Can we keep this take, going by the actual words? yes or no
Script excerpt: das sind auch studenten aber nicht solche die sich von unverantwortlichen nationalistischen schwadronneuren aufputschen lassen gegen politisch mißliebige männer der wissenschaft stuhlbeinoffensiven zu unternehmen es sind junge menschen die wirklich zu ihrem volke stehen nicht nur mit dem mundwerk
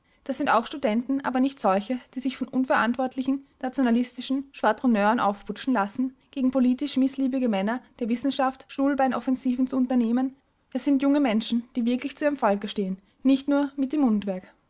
yes